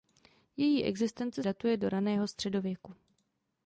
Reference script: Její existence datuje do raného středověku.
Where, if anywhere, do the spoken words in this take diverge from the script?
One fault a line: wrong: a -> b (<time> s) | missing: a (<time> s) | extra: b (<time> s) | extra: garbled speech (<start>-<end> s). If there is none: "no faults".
no faults